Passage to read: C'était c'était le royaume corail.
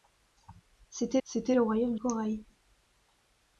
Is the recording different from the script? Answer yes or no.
no